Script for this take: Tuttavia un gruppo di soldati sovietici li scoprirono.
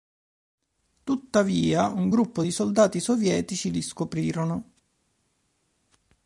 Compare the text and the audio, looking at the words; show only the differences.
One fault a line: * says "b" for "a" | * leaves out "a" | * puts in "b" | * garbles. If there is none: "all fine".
all fine